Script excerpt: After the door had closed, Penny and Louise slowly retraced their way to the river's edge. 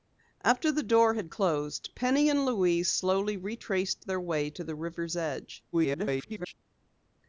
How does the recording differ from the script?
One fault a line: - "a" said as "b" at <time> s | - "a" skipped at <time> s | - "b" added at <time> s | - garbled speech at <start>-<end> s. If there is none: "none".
- garbled speech at 5.7-6.5 s